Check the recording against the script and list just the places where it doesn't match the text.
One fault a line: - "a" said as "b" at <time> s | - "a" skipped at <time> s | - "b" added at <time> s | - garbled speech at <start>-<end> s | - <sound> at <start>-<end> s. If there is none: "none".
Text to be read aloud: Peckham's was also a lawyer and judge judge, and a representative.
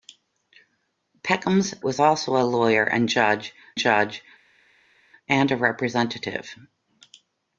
none